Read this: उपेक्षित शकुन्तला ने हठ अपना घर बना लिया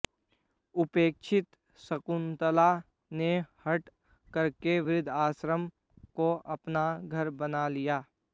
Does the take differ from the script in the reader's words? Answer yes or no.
yes